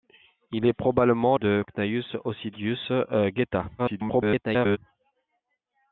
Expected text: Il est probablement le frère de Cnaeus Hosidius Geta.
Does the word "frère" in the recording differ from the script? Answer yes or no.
yes